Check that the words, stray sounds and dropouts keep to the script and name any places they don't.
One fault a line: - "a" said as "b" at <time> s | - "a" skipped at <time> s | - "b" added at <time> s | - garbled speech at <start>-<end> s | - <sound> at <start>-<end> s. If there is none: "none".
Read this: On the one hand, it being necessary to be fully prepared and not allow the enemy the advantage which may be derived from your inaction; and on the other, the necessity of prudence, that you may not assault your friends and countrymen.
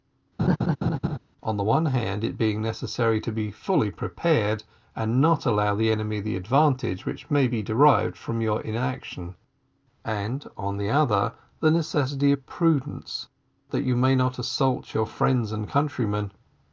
- laugh at 0.4-1.2 s